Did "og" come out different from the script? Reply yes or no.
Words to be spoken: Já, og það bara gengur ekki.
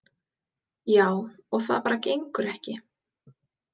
no